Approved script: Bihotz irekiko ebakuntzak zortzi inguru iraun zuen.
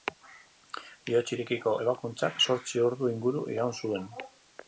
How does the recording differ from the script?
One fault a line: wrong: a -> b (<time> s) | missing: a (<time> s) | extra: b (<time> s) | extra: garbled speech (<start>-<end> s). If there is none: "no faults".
extra: ordu (2.9 s)